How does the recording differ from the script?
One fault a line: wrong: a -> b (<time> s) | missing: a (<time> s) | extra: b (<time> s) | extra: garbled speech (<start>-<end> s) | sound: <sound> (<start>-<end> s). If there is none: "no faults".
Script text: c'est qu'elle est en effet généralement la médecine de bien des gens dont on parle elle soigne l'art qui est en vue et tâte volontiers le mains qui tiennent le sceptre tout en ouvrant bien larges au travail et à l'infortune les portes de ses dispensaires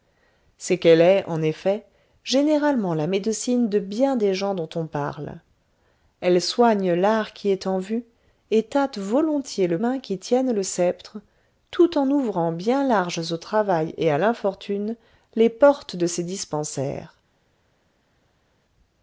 no faults